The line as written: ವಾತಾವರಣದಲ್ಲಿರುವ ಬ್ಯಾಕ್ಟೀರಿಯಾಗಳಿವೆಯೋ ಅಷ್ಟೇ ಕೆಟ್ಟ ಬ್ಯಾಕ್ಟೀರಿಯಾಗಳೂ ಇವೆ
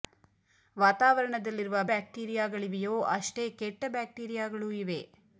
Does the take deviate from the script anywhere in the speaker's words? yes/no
no